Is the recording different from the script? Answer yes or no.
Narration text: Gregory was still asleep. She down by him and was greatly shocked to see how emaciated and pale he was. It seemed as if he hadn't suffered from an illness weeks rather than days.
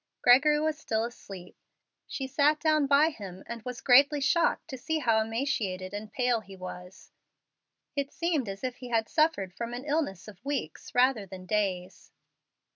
yes